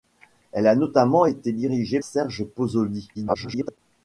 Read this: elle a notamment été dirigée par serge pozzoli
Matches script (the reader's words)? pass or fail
fail